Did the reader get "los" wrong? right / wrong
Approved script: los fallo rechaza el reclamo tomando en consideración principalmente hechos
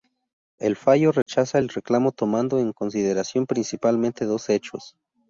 wrong